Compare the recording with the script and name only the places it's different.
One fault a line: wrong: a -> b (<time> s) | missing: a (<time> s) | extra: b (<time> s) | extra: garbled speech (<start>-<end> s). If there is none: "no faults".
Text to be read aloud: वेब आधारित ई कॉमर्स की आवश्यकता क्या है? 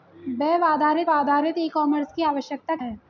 extra: आधारित (1.1 s)
missing: क्या (2.8 s)